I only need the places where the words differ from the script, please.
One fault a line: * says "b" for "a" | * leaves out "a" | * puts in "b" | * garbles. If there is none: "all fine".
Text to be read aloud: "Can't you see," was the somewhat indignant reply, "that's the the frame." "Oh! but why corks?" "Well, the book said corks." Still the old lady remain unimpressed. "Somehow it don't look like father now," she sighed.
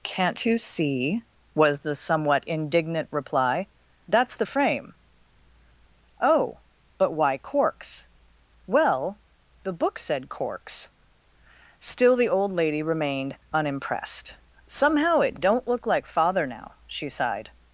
* leaves out "the"
* says "remained" for "remain"